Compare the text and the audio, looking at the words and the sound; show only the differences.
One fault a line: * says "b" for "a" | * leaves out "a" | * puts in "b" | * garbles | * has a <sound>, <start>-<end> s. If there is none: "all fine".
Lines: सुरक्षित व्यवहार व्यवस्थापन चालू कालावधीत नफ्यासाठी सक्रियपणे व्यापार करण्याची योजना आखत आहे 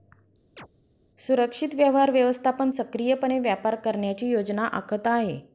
* has a chirp, 0.6-0.7 s
* leaves out "चालू कालावधीत नफ्यासाठी"